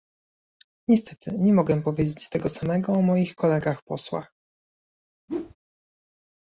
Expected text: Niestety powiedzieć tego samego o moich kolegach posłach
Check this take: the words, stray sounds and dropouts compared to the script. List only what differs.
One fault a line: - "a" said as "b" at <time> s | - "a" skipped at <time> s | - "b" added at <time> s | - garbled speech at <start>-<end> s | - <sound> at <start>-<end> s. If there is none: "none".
- "nie mogę" added at 1.4 s
- whoosh at 5.3-5.6 s